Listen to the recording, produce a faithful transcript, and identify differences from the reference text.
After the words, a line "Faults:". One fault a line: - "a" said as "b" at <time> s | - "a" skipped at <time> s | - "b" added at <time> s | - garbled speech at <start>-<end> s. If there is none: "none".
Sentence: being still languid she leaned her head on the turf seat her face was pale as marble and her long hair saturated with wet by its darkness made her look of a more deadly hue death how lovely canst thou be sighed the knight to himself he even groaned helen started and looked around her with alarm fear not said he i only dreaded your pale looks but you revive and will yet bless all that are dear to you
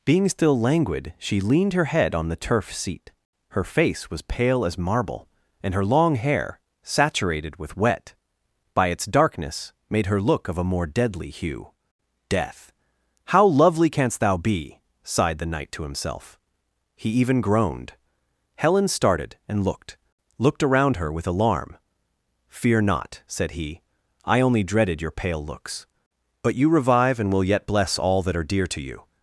being still languid she leaned her head on the turf seat her face was pale as marble and her long hair saturated with wet by its darkness made her look of a more deadly hue death how lovely canst thou be sighed the knight to himself he even groaned helen started and looked looked around her with alarm fear not said he i only dreaded your pale looks but you revive and will yet bless all that are dear to you
Faults:
- "looked" added at 20.4 s